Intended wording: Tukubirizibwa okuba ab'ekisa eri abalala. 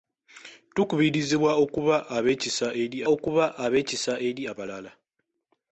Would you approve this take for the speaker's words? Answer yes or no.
no